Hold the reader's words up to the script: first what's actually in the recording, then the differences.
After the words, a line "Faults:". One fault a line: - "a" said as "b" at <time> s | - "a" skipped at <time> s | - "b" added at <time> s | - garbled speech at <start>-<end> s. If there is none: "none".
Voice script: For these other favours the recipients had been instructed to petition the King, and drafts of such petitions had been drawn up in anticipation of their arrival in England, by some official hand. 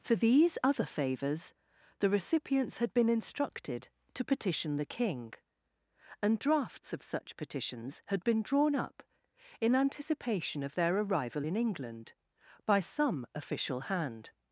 For these other favours the recipients had been instructed to petition the King, and drafts of such petitions had been drawn up in anticipation of their arrival in England, by some official hand.
Faults:
none